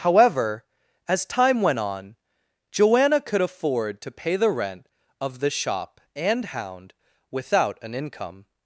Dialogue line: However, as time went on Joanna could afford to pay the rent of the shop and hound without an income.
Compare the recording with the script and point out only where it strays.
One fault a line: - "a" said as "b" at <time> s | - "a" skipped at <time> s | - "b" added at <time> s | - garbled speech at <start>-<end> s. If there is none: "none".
none